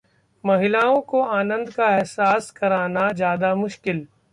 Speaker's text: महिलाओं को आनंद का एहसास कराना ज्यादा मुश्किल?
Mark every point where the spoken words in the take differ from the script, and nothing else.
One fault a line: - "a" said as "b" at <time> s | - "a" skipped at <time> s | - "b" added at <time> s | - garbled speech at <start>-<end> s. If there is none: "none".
none